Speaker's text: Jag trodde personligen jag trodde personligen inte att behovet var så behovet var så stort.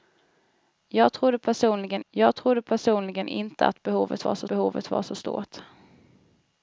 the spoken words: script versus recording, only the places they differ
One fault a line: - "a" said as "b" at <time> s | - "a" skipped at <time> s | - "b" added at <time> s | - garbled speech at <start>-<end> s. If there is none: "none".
none